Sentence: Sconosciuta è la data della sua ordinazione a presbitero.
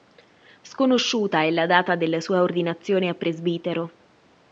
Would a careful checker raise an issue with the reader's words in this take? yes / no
no